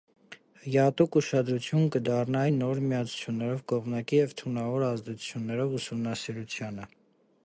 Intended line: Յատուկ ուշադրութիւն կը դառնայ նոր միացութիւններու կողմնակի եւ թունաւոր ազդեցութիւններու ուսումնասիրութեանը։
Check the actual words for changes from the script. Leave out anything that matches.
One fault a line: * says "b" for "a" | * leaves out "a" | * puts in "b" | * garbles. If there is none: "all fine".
all fine